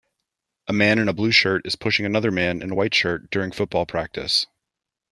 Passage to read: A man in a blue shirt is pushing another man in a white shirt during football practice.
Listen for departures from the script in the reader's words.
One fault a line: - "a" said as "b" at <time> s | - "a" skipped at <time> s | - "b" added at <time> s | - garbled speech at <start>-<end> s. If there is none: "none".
none